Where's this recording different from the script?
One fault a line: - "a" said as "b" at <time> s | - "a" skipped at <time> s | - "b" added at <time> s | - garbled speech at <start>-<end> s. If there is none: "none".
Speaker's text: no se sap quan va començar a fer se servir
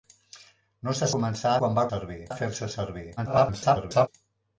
- "sap" said as "començar" at 1.1 s
- "començar" said as "servir" at 1.9 s
- garbled speech at 3.2-4.1 s